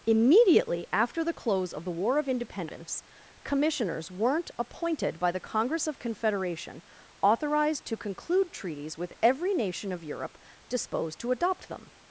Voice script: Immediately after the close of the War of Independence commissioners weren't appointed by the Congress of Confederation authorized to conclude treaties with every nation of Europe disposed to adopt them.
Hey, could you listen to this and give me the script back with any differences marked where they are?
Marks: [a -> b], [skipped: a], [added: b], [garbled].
Immediately after the close of the War of Independence commissioners weren't appointed by the Congress of Confederation authorized to conclude treaties with every nation of Europe disposed to adopt them.